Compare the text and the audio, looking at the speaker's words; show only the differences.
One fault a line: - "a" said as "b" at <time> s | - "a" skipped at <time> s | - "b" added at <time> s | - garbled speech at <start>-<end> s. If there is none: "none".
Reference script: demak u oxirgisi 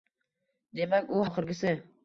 none